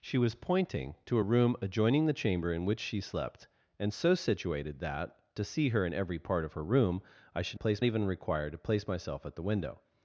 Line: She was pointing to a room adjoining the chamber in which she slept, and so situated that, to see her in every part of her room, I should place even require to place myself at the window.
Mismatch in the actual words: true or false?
false